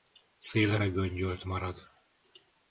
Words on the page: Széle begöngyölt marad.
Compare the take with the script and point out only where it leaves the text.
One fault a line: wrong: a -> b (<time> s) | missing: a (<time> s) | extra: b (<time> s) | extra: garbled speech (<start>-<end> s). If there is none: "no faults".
no faults